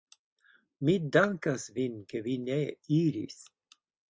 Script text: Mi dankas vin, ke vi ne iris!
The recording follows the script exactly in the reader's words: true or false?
true